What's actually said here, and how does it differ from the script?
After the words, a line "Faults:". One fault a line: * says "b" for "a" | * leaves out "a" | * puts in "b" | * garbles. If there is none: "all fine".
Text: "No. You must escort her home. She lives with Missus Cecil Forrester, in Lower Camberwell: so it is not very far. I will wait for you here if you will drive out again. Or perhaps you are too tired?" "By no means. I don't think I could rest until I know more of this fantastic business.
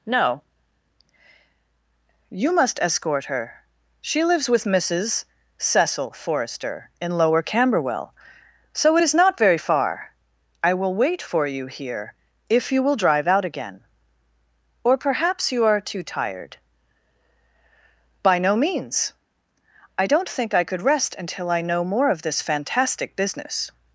"No. You must escort her. She lives with Missus Cecil Forrester, in Lower Camberwell: so it is not very far. I will wait for you here if you will drive out again. Or perhaps you are too tired?" "By no means. I don't think I could rest until I know more of this fantastic business.
Faults:
* leaves out "home"